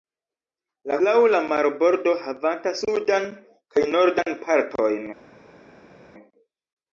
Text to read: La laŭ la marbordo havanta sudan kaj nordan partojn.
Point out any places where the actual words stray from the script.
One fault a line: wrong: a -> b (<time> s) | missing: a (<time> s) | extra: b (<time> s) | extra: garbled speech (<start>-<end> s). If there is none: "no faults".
no faults